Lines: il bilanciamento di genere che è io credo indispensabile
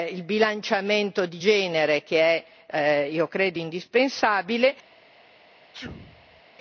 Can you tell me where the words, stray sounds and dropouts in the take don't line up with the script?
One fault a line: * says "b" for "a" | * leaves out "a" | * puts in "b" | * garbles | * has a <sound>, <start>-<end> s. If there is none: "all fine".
* has a sneeze, 5.7-6.4 s